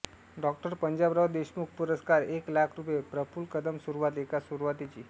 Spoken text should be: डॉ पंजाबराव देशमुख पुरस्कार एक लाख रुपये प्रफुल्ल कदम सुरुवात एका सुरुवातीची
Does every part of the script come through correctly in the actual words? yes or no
yes